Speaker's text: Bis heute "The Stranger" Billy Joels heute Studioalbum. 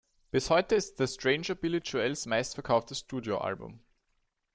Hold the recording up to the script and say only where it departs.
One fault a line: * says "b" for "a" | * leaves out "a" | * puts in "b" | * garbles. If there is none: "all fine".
* puts in "ist"
* says "meistverkauftes" for "heute"